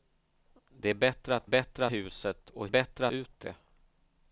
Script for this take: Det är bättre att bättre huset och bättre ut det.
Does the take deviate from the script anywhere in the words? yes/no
no